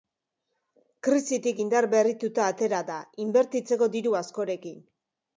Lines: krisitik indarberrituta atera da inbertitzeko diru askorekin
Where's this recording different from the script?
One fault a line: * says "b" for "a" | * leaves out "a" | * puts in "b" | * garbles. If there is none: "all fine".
all fine